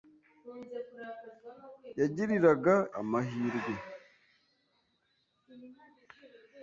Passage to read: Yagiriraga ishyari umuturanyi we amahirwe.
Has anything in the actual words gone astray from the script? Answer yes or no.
yes